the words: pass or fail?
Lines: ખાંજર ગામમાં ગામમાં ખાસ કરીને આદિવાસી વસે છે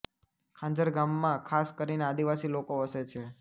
fail